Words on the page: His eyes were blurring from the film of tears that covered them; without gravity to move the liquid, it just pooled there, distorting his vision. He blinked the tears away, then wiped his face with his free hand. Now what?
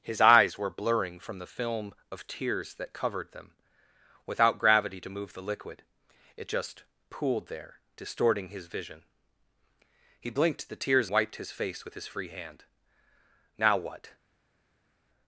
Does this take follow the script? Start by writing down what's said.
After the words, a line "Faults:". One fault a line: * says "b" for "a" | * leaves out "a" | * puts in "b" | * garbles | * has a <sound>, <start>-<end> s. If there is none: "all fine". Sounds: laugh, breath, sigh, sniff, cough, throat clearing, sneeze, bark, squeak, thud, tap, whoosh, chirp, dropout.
His eyes were blurring from the film of tears that covered them; without gravity to move the liquid, it just pooled there, distorting his vision. He blinked the tears wiped his face with his free hand. Now what?
Faults:
* leaves out "away then"